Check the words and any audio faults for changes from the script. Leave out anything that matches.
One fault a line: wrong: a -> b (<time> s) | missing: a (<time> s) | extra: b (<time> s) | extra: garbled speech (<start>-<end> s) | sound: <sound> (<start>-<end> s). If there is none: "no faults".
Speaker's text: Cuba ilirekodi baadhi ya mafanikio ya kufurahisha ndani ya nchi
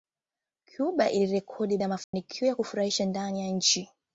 missing: baadhi (1.8 s)
sound: dropout (2.0-2.1 s)